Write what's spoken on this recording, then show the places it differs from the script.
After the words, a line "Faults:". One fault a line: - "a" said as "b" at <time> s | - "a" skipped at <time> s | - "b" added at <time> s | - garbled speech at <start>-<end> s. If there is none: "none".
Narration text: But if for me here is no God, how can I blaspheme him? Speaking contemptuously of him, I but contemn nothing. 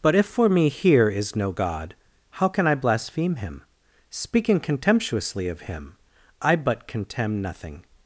But if for me here is no God, how can I blaspheme him? Speaking contemptuously of him, I but contemn nothing.
Faults:
none